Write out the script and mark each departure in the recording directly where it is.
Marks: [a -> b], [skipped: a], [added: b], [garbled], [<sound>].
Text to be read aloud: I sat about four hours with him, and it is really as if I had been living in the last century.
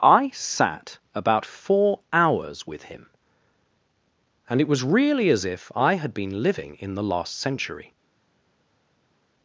I sat about four hours with him, and it [is -> was] really as if I had been living in the last century.